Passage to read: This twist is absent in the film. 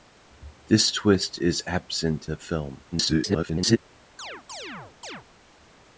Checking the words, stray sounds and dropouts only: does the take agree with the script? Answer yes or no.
no